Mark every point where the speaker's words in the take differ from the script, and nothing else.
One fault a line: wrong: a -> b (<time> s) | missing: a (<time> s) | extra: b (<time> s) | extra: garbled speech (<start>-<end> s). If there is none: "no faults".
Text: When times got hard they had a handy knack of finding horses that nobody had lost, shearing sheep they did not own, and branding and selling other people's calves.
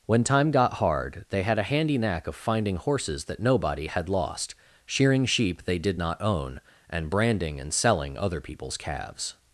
wrong: times -> time (0.2 s)